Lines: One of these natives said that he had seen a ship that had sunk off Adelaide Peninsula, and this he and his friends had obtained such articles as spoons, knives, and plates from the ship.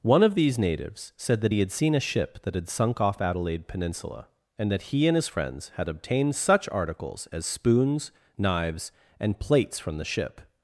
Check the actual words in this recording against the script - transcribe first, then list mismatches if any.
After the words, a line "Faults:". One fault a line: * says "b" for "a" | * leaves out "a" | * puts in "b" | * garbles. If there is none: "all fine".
One of these natives said that he had seen a ship that had sunk off Adelaide Peninsula, and that he and his friends had obtained such articles as spoons, knives, and plates from the ship.
Faults:
* says "that" for "this"